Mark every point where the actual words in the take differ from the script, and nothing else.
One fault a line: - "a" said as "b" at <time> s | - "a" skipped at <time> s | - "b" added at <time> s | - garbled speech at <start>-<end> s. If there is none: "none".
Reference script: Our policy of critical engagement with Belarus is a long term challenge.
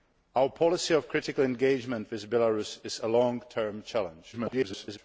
- garbled speech at 4.3-5.0 s